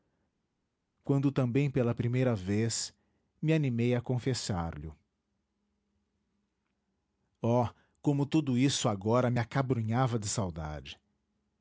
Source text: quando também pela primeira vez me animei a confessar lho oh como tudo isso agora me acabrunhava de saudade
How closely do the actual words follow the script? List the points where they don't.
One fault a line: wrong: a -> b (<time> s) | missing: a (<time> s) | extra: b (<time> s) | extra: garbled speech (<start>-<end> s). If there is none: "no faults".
no faults